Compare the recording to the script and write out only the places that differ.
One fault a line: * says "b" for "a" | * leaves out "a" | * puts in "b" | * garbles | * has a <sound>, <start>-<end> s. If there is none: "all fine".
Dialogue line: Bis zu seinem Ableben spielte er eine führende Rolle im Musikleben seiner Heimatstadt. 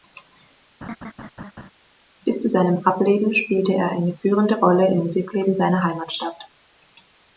* has a laugh, 0.8-1.7 s